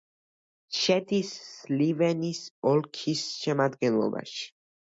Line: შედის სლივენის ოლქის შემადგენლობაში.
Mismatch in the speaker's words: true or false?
false